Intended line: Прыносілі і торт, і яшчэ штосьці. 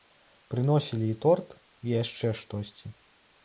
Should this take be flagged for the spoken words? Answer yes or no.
no